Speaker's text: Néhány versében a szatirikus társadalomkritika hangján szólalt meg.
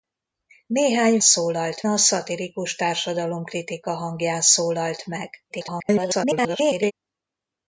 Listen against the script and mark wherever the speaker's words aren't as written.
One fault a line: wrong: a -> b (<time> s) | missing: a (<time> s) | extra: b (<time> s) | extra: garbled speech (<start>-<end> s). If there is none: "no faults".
wrong: versében -> szólalt (1.2 s)
extra: garbled speech (5.5-6.9 s)